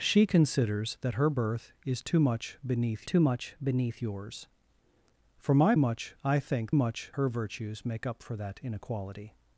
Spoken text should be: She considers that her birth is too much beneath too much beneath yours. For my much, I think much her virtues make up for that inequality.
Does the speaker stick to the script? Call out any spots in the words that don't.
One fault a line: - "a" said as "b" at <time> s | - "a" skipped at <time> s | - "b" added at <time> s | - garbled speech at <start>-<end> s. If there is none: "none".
none